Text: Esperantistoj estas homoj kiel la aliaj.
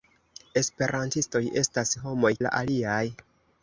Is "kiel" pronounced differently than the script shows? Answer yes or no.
yes